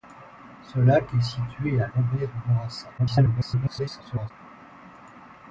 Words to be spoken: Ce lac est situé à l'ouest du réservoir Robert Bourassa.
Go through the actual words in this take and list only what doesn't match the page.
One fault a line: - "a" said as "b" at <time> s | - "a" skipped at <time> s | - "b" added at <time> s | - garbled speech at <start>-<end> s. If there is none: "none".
- "l'ouest du réservoir" skipped at 1.9 s
- garbled speech at 3.0-4.3 s